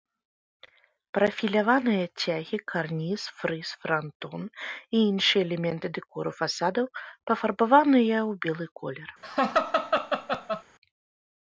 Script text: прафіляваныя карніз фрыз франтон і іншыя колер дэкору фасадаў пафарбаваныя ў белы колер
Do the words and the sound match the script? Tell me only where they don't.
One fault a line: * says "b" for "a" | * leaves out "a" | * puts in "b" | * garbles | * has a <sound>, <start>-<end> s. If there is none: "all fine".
* puts in "цягі"
* says "элементы" for "колер"
* has a laugh, 9.2-10.6 s